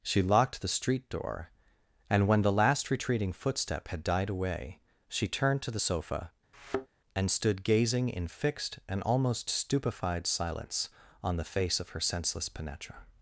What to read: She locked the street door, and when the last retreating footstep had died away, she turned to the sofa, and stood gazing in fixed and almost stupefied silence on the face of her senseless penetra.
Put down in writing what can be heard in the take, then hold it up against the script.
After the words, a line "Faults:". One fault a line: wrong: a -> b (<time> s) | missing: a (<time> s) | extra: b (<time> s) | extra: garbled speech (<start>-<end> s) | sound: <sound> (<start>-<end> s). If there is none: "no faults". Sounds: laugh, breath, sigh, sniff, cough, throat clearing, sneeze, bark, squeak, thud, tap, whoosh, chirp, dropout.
She locked the street door, and when the last retreating footstep had died away, she turned to the sofa, and stood gazing in fixed and almost stupefied silence on the face of her senseless penetra.
Faults:
sound: thud (6.5-6.9 s)